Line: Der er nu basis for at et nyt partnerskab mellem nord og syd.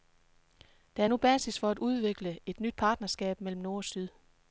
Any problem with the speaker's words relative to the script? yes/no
yes